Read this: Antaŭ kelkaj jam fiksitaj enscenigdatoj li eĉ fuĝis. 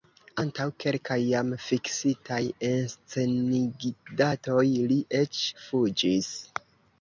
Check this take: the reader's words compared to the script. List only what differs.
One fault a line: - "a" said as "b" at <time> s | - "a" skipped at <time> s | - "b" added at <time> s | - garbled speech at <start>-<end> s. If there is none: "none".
none